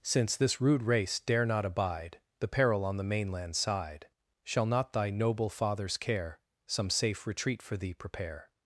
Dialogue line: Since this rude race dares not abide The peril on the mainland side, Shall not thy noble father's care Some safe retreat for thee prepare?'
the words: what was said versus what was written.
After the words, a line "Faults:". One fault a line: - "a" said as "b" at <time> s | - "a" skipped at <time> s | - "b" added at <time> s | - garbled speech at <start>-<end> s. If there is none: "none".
Since this rude race dare not abide The peril on the mainland side, Shall not thy noble father's care Some safe retreat for thee prepare?'
Faults:
- "dares" said as "dare" at 1.2 s